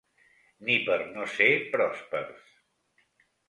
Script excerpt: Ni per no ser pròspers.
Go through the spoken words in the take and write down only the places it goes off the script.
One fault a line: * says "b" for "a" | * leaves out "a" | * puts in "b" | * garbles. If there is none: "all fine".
all fine